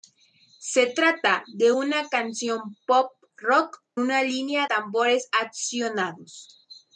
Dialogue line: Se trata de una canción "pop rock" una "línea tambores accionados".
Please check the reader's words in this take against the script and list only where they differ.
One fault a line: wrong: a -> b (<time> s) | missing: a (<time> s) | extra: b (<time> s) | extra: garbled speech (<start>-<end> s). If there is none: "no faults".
no faults